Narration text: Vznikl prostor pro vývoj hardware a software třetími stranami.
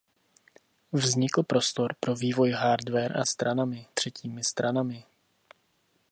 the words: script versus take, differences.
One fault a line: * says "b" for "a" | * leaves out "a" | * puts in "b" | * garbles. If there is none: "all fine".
* says "stranami" for "software"